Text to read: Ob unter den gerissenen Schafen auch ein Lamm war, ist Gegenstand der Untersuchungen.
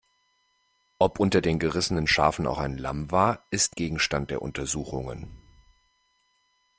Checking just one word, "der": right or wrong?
right